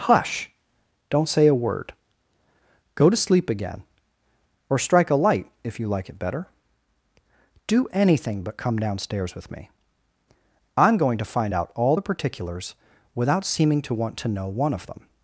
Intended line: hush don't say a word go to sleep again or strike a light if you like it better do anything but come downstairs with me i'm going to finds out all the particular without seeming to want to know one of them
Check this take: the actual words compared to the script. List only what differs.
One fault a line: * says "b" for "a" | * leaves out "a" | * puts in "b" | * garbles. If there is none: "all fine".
* says "find" for "finds"
* says "particulars" for "particular"